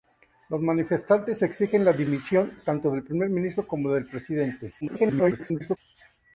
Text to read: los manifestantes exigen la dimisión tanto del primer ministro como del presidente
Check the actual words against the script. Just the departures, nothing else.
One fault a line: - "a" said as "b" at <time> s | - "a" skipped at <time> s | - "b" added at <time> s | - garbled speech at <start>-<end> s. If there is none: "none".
- garbled speech at 4.8-5.8 s